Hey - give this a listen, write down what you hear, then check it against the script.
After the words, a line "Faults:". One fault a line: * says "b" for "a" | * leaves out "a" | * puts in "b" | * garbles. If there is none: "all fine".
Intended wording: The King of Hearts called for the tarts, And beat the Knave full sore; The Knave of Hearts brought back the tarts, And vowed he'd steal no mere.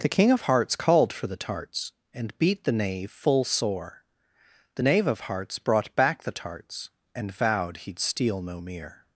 The King of Hearts called for the tarts, And beat the Knave full sore; The Knave of Hearts brought back the tarts, And vowed he'd steal no mere.
Faults:
all fine